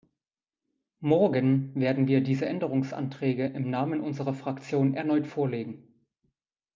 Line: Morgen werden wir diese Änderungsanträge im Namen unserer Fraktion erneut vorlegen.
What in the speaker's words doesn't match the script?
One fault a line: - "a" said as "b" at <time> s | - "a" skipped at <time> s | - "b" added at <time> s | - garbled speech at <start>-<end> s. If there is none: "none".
none